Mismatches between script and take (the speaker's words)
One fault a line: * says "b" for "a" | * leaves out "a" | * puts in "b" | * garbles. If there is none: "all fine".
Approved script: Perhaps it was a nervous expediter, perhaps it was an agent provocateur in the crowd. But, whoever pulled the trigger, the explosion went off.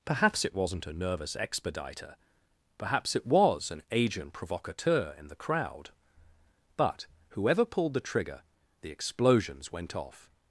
* says "wasn't" for "was"
* says "explosions" for "explosion"